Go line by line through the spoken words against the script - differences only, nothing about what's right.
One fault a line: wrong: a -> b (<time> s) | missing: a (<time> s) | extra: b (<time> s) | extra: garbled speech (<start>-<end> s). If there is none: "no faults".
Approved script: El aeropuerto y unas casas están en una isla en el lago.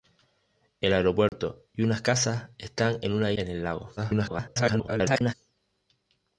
missing: isla (3.3 s)
extra: garbled speech (4.0-5.3 s)